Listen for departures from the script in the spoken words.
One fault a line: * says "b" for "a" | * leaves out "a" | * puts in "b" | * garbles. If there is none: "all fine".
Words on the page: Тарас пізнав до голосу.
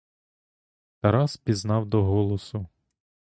all fine